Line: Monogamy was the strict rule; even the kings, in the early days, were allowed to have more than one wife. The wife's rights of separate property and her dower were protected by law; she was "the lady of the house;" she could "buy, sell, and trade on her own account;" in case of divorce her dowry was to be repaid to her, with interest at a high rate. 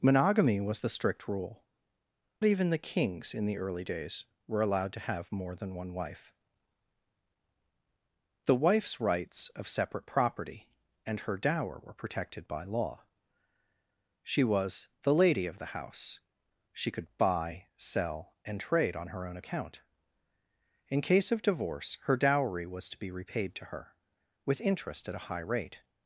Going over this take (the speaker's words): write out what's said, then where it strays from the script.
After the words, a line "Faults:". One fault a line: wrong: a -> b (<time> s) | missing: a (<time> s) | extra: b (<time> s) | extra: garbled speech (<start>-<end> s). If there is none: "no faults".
Monogamy was the strict rule; even the kings, in the early days, were allowed to have more than one wife. The wife's rights of separate property and her dower were protected by law; she was "the lady of the house;" she could "buy, sell, and trade on her own account;" in case of divorce her dowry was to be repaid to her, with interest at a high rate.
Faults:
no faults